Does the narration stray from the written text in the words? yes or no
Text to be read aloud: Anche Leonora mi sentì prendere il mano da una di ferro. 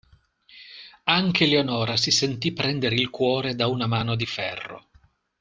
yes